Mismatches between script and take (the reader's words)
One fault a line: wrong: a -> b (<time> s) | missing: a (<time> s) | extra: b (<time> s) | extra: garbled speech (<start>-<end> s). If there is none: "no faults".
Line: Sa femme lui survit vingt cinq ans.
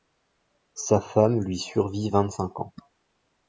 no faults